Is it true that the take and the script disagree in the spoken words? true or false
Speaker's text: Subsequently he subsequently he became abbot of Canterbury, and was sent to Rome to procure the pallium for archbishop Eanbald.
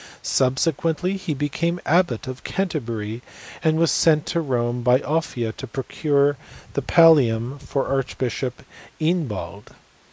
true